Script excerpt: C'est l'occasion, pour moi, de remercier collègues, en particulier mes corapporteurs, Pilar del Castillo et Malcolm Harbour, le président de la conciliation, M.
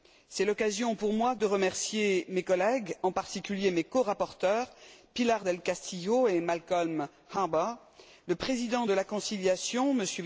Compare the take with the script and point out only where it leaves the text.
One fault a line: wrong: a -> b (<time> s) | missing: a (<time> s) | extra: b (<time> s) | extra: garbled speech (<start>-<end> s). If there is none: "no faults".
extra: mes (2.3 s)